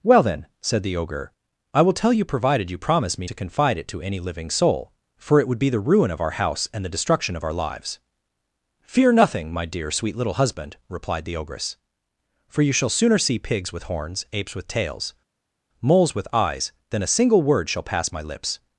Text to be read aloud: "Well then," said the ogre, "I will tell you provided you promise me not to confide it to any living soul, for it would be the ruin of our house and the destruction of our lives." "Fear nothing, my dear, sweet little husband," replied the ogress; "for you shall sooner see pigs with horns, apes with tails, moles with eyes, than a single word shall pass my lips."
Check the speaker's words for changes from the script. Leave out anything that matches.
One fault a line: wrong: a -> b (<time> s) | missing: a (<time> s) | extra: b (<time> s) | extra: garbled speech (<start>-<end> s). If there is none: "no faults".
missing: not (3.3 s)